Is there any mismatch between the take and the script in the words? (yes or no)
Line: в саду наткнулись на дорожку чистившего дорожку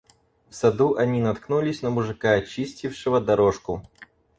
yes